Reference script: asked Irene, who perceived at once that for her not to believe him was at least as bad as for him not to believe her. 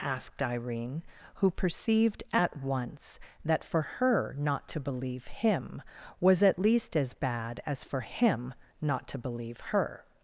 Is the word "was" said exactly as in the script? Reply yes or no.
yes